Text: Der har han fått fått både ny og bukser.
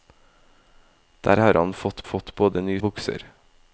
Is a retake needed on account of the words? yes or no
no